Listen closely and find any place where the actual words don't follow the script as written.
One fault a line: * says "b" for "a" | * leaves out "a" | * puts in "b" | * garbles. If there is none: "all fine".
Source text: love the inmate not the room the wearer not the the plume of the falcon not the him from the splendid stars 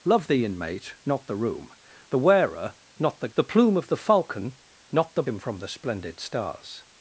all fine